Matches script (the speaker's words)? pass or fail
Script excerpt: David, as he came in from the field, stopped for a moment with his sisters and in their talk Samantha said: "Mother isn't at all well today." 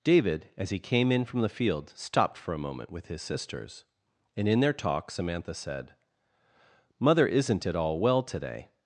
pass